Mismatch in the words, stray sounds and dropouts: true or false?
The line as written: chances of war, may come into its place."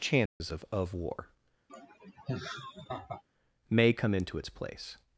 true